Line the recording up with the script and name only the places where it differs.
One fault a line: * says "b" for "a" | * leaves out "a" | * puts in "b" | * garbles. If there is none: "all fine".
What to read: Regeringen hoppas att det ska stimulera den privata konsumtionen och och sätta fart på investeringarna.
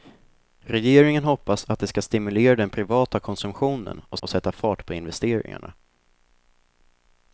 all fine